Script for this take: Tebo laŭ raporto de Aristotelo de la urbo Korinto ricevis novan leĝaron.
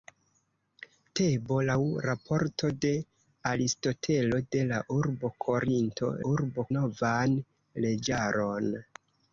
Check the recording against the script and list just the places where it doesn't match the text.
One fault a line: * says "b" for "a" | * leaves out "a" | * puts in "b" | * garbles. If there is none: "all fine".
* says "urbo" for "ricevis"